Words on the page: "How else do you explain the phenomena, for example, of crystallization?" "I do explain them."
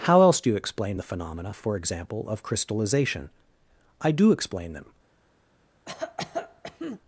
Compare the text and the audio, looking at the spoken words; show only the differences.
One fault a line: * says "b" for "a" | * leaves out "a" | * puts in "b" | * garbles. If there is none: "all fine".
all fine